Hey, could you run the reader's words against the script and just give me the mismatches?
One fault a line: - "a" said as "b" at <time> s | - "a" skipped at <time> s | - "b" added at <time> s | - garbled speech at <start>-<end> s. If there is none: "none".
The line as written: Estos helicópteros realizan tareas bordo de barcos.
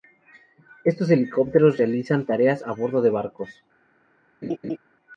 - "a" added at 2.6 s